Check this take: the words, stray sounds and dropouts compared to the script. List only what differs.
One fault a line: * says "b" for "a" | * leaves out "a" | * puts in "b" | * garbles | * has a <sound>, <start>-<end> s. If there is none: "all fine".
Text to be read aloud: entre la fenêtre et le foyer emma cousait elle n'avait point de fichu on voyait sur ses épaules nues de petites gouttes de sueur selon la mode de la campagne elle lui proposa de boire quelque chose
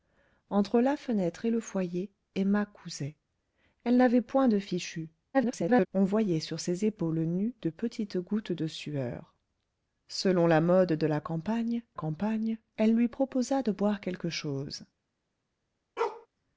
* garbles
* puts in "campagne"
* has a bark, 16.0-16.3 s